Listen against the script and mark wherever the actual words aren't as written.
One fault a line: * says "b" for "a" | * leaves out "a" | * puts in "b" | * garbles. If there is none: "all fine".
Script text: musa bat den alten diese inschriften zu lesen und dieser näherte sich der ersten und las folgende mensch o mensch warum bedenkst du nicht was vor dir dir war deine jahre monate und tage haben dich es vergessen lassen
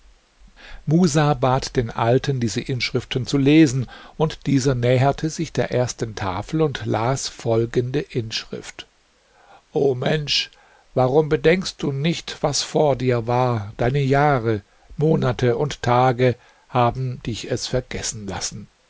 * puts in "tafel"
* says "inschrift" for "mensch"
* leaves out "dir"